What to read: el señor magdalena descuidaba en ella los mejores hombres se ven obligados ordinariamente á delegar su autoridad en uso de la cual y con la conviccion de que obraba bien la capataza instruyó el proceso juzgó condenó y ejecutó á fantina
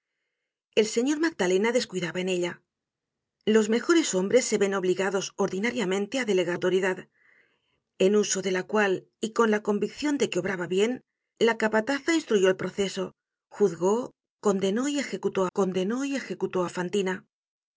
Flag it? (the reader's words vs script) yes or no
yes